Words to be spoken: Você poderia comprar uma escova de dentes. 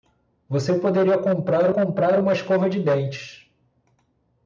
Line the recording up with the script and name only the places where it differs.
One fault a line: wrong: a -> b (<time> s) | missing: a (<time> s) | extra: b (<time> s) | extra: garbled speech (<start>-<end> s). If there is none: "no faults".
extra: comprar (1.7 s)